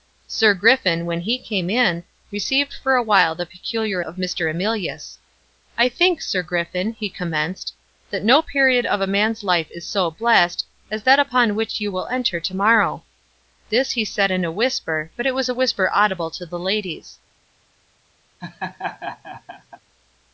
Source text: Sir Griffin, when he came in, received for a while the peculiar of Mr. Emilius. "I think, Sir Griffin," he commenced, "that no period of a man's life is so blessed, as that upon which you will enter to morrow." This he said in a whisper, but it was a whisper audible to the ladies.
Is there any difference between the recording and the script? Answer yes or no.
no